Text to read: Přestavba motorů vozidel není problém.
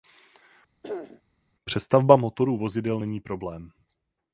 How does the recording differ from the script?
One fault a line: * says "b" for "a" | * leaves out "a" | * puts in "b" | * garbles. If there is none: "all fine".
all fine